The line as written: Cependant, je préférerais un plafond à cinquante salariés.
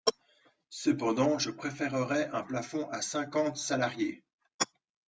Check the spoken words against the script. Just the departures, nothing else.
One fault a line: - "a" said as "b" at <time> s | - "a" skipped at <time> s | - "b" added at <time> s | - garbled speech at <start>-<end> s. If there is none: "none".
none